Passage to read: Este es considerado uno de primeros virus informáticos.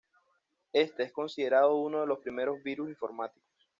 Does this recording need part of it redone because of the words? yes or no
yes